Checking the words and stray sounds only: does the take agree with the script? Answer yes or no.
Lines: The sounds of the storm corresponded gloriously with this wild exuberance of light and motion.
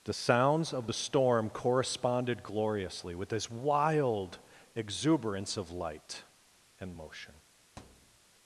no